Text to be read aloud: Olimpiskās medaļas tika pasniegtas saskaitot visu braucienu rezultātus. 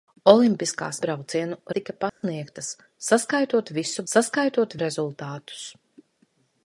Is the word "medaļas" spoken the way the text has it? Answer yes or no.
no